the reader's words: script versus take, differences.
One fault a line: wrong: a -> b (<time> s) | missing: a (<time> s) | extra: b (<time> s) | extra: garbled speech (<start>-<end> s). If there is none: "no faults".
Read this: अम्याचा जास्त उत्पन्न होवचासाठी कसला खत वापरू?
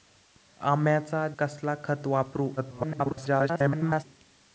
missing: जास्त उत्पन्न होवचासाठी (1.3 s)
extra: garbled speech (2.6-4.0 s)